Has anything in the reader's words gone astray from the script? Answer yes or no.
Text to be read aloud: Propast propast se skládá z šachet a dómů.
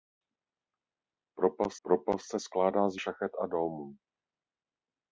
no